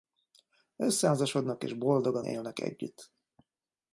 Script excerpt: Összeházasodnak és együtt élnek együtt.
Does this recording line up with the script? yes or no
no